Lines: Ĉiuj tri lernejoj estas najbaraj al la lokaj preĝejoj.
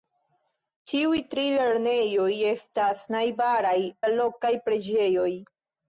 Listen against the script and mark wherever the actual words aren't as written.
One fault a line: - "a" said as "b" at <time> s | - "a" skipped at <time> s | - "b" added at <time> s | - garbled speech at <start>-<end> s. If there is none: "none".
- "al" skipped at 3.8 s